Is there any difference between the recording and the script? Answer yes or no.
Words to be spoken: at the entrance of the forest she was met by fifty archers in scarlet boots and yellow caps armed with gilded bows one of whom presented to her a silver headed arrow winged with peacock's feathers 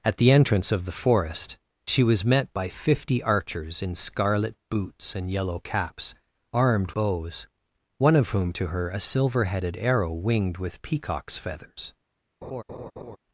yes